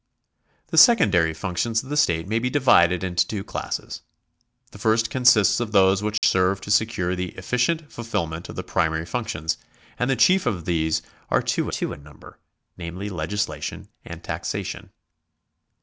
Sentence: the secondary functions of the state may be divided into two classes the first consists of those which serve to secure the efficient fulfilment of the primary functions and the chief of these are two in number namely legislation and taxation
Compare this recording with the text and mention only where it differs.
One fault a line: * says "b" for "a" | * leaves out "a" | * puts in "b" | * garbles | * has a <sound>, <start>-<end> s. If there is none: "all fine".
* has a dropout, 6.2-6.2 s
* puts in "two"